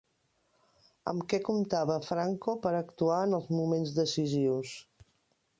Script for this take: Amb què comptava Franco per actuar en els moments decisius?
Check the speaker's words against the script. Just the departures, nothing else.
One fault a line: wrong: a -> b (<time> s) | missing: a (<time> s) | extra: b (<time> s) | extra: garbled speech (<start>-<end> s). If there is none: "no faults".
no faults